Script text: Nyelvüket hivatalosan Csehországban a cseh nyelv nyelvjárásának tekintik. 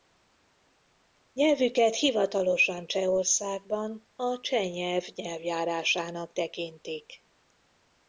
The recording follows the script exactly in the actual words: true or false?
true